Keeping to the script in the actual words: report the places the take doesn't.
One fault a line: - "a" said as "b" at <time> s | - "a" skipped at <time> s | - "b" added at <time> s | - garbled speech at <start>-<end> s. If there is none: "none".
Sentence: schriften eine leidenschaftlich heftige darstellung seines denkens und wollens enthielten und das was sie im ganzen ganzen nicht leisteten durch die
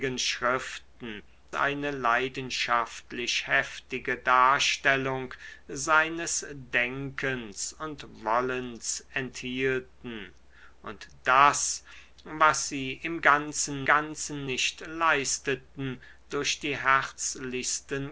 none